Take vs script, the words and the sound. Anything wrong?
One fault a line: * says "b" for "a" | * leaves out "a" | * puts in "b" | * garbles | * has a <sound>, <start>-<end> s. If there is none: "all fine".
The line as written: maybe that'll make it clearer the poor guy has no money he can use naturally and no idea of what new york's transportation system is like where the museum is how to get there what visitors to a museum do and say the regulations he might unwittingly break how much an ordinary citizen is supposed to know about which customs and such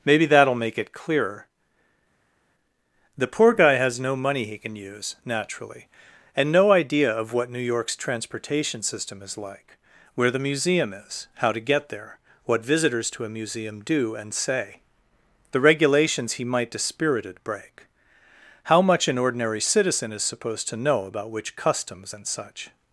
* says "dispirited" for "unwittingly"